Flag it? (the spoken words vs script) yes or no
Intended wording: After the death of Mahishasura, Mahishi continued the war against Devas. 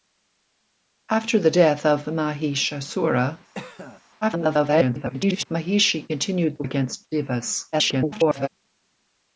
yes